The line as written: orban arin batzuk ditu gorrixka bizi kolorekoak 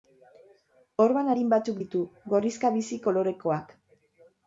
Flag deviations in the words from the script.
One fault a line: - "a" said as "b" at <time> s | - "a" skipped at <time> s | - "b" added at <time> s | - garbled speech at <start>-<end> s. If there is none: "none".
none